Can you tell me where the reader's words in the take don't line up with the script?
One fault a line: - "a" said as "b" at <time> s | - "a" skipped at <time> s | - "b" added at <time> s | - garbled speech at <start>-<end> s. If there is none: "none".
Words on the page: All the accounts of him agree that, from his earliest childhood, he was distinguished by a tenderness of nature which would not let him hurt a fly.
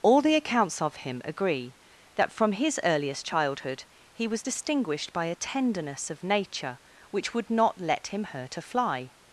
none